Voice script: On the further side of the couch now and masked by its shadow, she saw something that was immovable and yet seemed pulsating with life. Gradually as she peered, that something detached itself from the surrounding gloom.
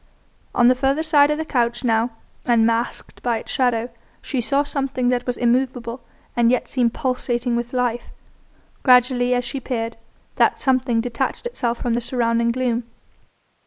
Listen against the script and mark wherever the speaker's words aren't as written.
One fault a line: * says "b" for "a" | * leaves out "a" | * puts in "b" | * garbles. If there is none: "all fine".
all fine